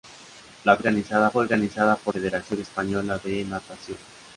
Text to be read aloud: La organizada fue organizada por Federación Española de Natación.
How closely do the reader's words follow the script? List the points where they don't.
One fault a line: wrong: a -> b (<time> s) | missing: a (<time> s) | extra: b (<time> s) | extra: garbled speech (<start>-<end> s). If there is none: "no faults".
no faults